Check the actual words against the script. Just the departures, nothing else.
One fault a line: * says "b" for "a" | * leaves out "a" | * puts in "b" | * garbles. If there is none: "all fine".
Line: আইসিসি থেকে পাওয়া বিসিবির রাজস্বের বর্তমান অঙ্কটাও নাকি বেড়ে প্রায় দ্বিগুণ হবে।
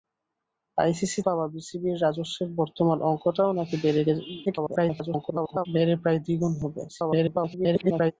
* leaves out "থেকে"
* garbles
* garbles